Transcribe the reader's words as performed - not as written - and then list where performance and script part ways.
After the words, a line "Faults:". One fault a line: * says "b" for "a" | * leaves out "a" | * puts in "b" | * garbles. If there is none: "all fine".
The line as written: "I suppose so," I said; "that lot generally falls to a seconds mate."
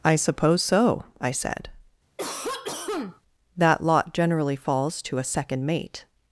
"I suppose so," I said; "that lot generally falls to a second mate."
Faults:
* says "second" for "seconds"